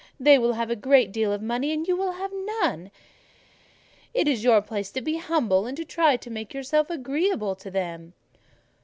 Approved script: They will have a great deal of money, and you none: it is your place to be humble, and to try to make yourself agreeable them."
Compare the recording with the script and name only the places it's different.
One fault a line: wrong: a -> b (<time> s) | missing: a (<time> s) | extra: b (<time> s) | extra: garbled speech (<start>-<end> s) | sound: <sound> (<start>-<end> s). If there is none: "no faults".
extra: will have (1.9 s)
extra: to (7.6 s)